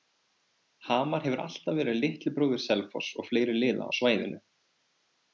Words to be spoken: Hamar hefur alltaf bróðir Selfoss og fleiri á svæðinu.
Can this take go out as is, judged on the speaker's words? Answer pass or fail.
fail